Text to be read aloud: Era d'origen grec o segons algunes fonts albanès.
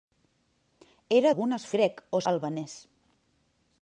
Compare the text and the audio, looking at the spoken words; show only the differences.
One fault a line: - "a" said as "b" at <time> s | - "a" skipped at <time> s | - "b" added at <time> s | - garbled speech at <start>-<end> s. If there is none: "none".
- "d'origen" said as "algunes" at 1.3 s
- "segons algunes fonts" skipped at 2.2 s